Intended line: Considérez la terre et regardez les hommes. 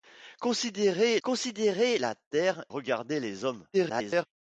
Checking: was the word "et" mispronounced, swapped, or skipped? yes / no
yes